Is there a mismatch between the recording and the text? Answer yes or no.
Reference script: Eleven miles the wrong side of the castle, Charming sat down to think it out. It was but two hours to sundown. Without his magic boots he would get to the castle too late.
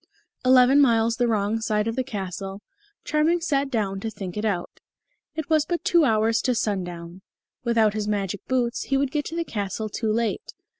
no